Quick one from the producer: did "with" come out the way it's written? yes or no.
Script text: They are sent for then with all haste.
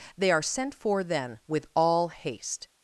yes